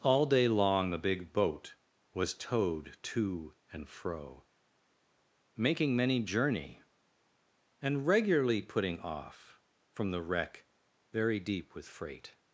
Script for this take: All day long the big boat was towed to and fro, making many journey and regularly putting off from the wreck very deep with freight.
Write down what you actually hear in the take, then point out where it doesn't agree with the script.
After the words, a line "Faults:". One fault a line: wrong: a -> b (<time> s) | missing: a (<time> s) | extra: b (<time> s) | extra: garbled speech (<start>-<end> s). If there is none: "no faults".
All day long the big boat was towed to and fro, making many journey and regularly putting off from the wreck very deep with freight.
Faults:
no faults